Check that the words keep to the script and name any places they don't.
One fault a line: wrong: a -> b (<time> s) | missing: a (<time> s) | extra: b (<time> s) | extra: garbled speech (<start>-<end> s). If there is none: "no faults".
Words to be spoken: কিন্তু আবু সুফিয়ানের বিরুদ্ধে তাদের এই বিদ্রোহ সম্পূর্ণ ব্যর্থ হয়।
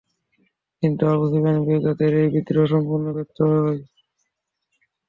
no faults